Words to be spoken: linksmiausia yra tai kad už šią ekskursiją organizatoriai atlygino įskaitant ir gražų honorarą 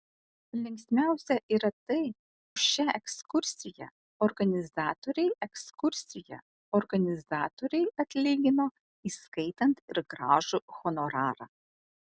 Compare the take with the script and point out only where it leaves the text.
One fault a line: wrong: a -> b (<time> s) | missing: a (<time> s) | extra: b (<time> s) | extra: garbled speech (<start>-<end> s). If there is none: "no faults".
missing: kad (2.0 s)
extra: ekskursiją organizatoriai (5.5 s)